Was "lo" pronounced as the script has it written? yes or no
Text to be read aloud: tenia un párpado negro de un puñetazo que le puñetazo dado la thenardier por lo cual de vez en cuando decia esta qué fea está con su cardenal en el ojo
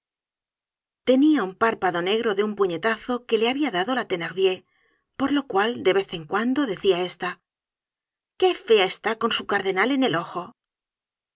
yes